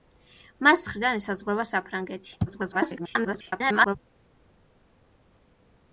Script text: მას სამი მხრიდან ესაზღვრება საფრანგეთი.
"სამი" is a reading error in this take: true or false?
true